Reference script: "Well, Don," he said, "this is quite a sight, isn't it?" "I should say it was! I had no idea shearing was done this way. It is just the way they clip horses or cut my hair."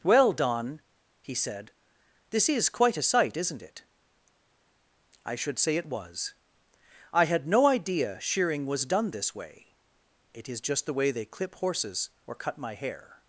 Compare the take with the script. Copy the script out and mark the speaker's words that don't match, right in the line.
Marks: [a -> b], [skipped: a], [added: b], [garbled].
"Well, Don," he said, "this is quite a sight, isn't it?" "I should say it was! I had no idea shearing was done this way. It is just the way they clip horses or cut my hair."